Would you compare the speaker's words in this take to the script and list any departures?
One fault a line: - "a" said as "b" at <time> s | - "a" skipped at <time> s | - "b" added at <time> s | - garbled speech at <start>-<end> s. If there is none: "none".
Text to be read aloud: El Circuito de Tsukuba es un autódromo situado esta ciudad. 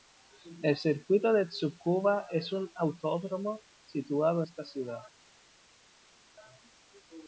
none